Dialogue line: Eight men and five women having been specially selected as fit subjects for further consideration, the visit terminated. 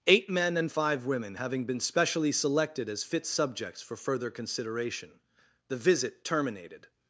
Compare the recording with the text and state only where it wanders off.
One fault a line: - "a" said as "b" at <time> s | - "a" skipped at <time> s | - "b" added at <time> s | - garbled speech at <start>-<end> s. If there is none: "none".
none